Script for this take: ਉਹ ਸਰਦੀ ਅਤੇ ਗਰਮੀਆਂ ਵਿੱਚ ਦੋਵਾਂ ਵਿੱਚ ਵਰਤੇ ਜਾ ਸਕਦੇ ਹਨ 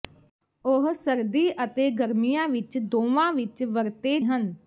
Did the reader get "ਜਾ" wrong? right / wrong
wrong